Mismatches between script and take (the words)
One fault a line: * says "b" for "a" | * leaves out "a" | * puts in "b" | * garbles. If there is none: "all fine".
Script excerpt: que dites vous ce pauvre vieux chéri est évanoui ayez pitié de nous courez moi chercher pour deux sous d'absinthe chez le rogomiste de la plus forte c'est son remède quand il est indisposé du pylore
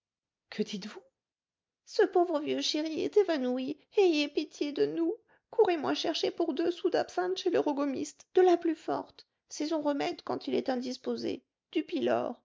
all fine